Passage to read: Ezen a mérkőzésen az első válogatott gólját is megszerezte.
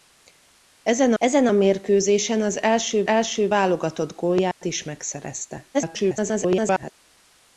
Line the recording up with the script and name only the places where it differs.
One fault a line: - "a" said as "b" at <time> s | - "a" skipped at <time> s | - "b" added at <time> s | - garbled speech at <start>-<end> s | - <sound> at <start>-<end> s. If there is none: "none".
- "ezen" added at 1.2 s
- "első" added at 3.1 s
- dropout at 4.5-4.6 s
- garbled speech at 5.7-6.9 s